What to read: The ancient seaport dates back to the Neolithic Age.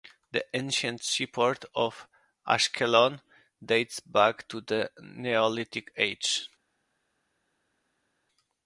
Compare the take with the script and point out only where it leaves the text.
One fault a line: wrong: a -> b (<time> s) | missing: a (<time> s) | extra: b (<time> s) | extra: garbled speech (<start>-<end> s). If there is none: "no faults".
extra: of Ashkelon (1.8 s)